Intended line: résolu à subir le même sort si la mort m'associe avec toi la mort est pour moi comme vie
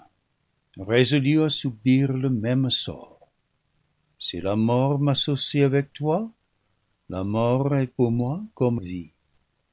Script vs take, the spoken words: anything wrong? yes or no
no